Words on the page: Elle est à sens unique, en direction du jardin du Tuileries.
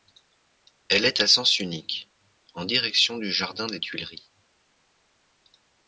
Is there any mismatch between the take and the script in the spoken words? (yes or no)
yes